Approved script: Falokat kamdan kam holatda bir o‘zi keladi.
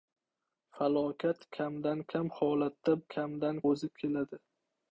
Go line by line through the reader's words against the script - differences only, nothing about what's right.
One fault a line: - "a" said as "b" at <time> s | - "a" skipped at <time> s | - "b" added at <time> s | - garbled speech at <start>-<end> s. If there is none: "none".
- "bir" said as "kamdan" at 3.1 s